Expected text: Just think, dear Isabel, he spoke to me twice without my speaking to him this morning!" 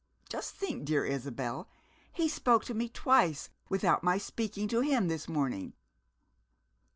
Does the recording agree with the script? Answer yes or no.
yes